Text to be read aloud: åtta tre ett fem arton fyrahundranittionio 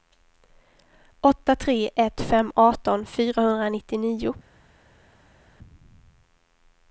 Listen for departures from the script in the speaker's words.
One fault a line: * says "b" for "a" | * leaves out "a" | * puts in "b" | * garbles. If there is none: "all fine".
all fine